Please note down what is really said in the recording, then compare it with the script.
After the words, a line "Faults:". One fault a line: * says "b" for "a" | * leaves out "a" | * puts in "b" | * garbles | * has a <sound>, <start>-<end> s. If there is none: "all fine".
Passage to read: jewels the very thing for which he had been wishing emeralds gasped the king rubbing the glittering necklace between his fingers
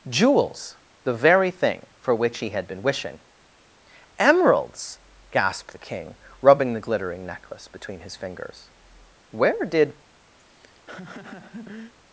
jewels the very thing for which he had been wishing emeralds gasped the king rubbing the glittering necklace between his fingers where did
Faults:
* puts in "where did"
* has a laugh, 10.4-11.9 s